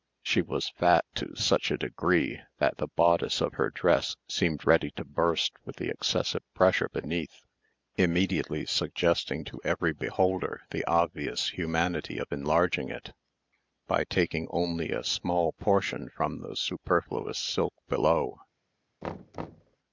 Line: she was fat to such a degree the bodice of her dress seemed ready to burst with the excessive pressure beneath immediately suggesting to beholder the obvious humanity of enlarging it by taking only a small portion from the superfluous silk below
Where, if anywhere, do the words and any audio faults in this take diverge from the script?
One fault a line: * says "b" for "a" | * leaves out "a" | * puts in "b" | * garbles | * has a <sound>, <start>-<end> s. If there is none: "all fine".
* puts in "that"
* puts in "every"
* has a thud, 19.0-19.8 s